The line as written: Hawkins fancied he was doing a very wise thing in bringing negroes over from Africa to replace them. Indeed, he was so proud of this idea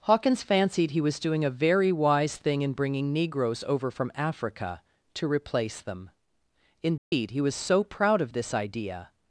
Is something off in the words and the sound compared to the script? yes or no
yes